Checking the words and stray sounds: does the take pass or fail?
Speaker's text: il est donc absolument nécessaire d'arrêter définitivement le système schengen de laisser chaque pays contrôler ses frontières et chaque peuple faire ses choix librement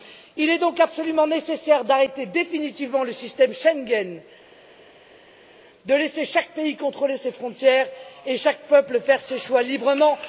pass